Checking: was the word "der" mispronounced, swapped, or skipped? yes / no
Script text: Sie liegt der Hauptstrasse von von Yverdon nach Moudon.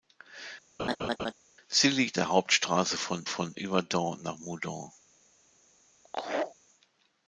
no